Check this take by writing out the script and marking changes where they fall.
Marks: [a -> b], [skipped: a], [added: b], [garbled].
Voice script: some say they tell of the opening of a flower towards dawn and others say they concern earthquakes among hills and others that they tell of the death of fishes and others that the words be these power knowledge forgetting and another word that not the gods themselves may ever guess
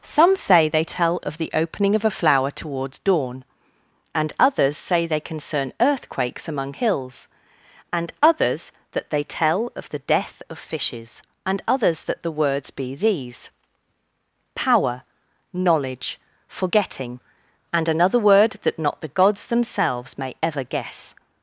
some say they tell of the opening of a flower towards dawn and others say they concern earthquakes among hills and others that they tell of the death of fishes and others that the words be these power knowledge forgetting and another word that not the gods themselves may ever guess